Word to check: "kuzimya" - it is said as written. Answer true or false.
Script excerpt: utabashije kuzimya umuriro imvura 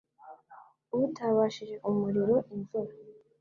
false